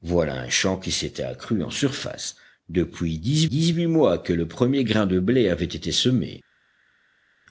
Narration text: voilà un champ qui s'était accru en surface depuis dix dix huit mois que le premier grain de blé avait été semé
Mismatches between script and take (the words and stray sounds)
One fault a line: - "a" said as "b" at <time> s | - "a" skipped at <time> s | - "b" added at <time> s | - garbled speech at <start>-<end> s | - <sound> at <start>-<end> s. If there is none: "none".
none